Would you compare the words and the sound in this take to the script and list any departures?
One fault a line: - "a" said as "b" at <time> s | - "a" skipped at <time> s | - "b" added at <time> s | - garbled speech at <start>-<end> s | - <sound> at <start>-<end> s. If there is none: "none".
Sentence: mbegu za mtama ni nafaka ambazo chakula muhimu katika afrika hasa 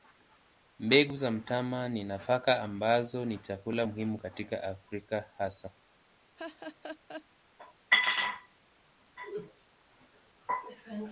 - "ni" added at 3.2 s
- laugh at 6.4-7.2 s